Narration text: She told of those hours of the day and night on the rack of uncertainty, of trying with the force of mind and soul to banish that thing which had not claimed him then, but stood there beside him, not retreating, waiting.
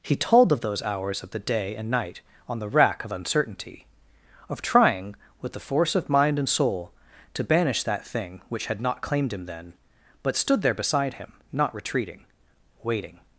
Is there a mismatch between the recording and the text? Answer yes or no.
yes